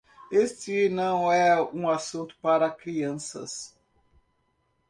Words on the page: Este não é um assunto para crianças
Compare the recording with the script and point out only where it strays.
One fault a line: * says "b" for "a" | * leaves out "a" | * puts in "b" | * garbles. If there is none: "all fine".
all fine